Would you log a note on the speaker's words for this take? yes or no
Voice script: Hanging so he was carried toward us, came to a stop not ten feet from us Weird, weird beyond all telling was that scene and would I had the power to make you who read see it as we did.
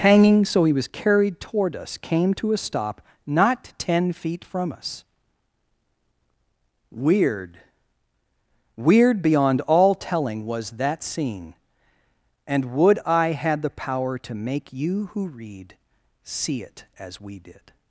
no